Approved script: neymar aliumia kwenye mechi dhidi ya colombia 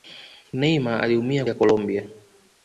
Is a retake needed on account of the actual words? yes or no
yes